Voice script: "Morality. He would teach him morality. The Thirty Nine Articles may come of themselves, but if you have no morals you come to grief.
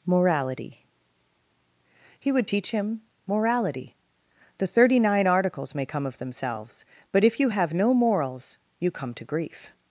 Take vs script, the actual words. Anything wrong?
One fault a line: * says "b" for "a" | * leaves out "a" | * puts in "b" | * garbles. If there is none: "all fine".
all fine